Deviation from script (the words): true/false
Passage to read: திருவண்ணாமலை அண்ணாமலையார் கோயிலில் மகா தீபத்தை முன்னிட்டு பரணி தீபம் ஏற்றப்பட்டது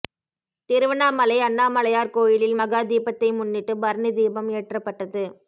false